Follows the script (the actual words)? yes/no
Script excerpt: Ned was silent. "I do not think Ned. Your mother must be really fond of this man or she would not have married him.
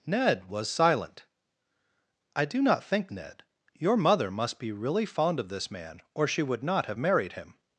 yes